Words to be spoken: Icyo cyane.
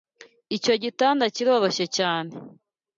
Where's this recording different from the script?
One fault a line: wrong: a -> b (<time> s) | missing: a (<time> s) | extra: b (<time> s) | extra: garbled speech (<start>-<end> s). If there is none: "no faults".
extra: gitanda kiroroshye (0.8 s)